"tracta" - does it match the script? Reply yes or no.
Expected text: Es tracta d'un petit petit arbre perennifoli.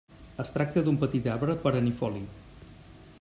yes